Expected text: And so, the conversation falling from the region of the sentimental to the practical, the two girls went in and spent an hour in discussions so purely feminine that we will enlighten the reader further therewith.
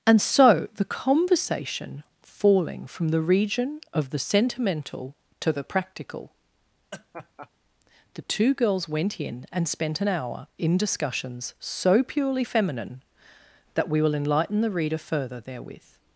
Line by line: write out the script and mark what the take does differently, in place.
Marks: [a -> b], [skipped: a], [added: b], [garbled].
And so, the conversation falling from the region of the sentimental to the practical, the two girls went in and spent an hour in discussions so purely feminine that we will enlighten the reader further therewith.